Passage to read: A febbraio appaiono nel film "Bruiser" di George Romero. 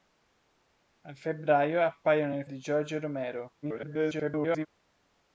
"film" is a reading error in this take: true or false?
true